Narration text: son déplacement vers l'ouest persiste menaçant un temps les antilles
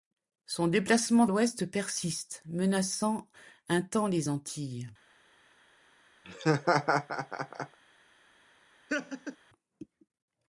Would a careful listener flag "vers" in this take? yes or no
yes